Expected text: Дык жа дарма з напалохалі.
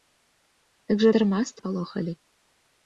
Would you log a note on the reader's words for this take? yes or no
no